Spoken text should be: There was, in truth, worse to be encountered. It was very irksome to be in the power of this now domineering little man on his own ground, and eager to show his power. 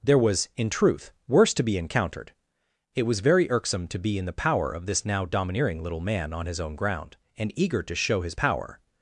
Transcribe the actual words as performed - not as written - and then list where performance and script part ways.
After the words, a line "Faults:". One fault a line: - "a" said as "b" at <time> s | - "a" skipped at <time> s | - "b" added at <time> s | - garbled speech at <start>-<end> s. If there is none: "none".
There was, in truth, worse to be encountered. It was very irksome to be in the power of this now domineering little man on his own ground, and eager to show his power.
Faults:
none